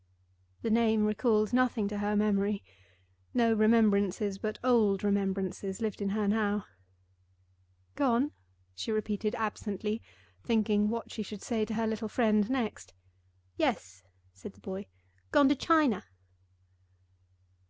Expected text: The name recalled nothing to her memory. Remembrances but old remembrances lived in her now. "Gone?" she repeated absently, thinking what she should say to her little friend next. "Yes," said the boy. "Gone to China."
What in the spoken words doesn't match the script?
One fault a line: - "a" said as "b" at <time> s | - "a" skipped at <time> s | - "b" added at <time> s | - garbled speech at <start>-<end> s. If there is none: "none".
- "No" added at 3.4 s